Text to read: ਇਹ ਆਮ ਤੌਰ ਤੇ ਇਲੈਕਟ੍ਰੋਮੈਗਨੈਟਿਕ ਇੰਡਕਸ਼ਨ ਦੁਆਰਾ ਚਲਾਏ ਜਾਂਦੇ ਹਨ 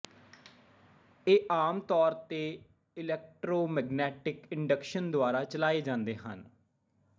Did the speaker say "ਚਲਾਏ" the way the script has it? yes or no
yes